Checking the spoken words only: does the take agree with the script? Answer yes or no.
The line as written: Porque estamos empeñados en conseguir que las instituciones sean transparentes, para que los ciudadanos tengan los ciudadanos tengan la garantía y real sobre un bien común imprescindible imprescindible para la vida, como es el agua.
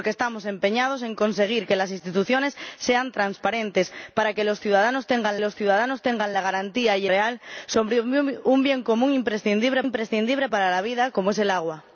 yes